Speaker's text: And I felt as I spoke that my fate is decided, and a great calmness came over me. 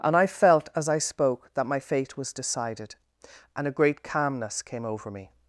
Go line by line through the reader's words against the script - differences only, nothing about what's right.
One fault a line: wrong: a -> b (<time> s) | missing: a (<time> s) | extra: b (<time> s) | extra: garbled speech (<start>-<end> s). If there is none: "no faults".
wrong: is -> was (2.2 s)